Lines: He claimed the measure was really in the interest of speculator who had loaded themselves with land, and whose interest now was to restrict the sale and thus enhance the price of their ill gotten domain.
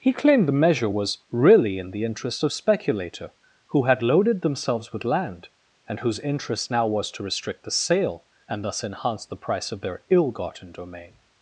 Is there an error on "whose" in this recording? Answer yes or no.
no